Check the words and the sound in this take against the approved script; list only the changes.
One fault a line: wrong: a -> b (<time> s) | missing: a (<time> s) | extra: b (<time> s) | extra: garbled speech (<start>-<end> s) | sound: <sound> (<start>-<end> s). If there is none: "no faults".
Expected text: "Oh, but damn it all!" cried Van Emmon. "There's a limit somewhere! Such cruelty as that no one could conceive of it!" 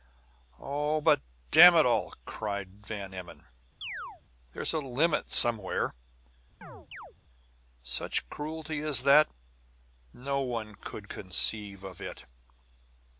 sound: chirp (3.8-4.2 s)
sound: chirp (6.6-7.1 s)